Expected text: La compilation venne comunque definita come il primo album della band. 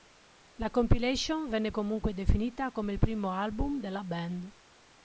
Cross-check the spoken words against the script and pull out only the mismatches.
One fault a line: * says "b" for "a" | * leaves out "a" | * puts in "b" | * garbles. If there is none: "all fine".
all fine